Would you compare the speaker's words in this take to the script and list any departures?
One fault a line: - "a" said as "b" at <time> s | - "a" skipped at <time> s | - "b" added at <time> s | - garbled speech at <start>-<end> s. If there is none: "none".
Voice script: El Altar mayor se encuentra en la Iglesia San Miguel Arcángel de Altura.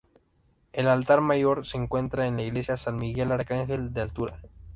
none